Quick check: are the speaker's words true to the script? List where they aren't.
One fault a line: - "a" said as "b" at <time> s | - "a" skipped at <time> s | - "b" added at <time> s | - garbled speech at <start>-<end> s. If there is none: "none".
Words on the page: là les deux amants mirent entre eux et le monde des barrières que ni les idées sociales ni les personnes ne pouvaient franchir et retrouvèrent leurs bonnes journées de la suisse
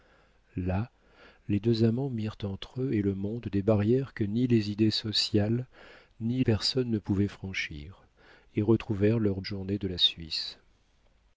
- "les" skipped at 6.4 s
- "bonnes" skipped at 9.4 s